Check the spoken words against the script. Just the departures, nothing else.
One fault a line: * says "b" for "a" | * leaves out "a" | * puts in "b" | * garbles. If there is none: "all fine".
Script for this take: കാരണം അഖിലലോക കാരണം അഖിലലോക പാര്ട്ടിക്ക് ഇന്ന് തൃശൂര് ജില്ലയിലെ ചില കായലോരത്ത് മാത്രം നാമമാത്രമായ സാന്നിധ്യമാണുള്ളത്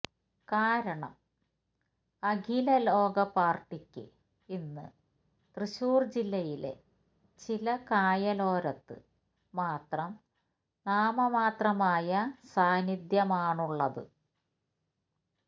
* leaves out "കാരണം അഖിലലോക"